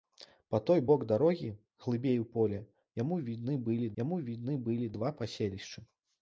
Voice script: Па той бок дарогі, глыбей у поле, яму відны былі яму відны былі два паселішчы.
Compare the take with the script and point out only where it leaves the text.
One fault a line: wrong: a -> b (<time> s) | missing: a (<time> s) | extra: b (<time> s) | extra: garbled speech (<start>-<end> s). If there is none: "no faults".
no faults